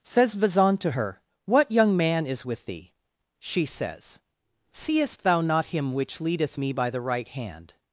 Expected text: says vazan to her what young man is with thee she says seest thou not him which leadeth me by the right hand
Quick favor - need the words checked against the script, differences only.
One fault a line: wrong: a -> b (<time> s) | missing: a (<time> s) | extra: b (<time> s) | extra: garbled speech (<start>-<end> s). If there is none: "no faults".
no faults